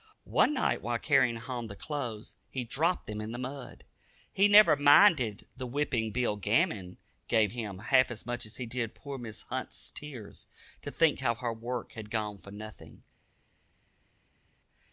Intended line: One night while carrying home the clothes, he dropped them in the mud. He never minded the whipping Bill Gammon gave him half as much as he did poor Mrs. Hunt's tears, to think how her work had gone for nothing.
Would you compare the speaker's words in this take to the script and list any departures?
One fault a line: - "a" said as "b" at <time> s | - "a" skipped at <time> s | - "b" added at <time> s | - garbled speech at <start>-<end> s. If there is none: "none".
none